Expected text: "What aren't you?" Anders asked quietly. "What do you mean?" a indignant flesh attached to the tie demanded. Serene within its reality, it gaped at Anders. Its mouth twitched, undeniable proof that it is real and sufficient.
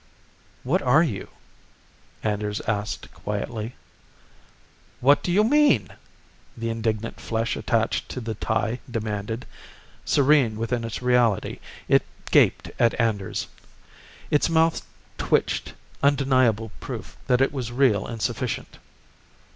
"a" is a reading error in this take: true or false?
true